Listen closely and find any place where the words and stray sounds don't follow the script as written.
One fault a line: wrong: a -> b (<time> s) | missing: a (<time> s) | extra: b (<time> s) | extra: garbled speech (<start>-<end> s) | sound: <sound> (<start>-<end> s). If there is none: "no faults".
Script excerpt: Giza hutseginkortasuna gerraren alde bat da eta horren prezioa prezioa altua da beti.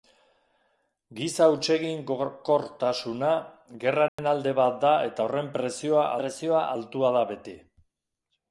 sound: dropout (4.1-4.2 s)